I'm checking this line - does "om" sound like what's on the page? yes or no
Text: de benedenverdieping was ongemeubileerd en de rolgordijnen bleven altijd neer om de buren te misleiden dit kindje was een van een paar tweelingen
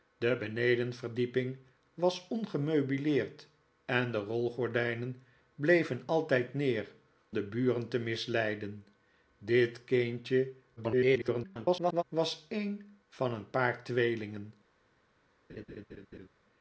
no